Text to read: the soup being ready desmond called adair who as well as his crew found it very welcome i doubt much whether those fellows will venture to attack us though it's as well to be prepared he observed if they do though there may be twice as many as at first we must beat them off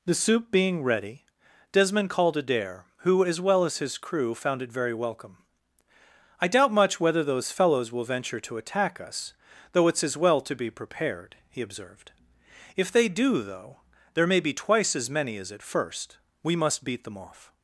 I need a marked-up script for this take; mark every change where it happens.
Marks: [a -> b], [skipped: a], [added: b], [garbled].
the soup being ready desmond called adair who as well as his crew found it very welcome i doubt much whether those fellows will venture to attack us though it's as well to be prepared he observed if they do though there may be twice as many as at first we must beat them off